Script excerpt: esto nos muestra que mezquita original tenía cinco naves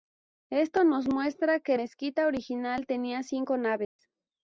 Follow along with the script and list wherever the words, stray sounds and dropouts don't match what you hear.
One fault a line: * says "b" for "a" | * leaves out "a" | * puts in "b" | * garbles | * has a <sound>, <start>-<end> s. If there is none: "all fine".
* has a dropout, 3.8-4.0 s